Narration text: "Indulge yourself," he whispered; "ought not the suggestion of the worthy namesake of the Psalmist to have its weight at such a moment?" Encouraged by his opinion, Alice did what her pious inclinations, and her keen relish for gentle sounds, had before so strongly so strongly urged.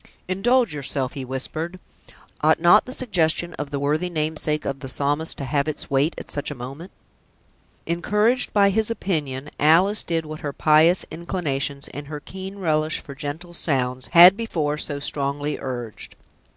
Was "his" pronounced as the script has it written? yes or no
yes